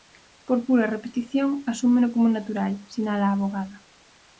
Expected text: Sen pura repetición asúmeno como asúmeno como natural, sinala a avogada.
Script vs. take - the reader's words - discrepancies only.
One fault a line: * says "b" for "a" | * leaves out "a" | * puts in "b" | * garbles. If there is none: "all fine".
* says "Por" for "Sen"
* leaves out "asúmeno como"